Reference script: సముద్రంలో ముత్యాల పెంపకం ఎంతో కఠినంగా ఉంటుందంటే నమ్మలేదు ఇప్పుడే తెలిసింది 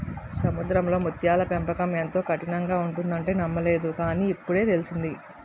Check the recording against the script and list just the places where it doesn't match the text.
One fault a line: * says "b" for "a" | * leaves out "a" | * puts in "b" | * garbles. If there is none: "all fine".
* puts in "కాని"